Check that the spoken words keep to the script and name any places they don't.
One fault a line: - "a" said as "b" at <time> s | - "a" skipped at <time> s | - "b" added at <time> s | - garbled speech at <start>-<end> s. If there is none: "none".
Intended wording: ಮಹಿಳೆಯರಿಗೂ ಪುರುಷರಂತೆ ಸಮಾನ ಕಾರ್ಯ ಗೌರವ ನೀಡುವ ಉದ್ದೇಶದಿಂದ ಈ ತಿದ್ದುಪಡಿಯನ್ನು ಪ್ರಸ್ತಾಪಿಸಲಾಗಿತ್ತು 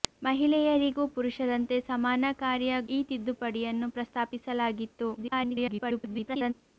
- "ಗೌರವ ನೀಡುವ ಉದ್ದೇಶದಿಂದ" skipped at 2.8 s
- garbled speech at 5.2-6.5 s